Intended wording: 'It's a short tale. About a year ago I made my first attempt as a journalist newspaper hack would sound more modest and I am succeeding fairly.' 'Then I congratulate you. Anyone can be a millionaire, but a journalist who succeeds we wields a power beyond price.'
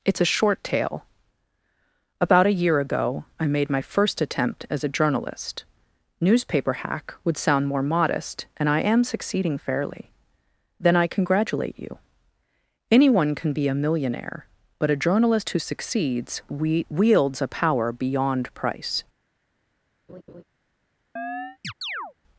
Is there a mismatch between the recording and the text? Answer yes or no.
no